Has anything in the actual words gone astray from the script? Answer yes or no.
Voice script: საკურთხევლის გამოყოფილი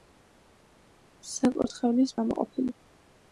no